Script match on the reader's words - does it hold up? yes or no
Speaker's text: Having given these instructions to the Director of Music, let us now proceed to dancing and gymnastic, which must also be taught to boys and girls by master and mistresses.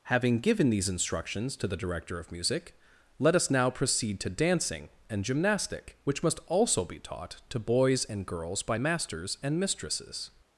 no